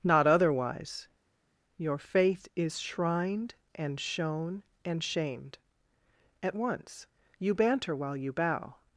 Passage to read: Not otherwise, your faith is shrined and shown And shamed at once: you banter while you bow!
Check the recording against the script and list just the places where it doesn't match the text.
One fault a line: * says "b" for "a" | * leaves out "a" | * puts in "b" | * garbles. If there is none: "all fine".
all fine